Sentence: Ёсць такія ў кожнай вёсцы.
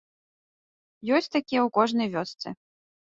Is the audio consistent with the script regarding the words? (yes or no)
yes